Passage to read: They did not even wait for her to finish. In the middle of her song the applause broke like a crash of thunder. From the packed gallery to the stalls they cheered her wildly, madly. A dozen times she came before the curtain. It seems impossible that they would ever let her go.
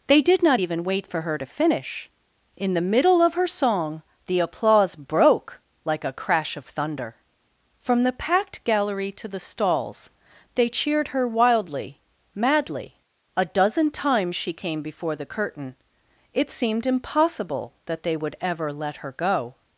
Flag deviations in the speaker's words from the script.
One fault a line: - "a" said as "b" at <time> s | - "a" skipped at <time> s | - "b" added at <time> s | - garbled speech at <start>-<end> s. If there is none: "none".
- "seems" said as "seemed" at 16.5 s